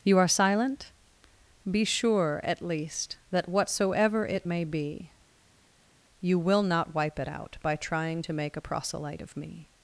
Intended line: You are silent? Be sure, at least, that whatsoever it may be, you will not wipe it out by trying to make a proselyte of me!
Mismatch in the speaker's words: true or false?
false